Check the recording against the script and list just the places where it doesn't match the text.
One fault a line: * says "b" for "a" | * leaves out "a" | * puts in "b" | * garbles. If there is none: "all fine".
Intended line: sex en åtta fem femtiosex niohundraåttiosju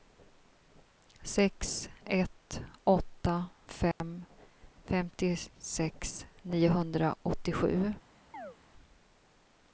* says "ett" for "en"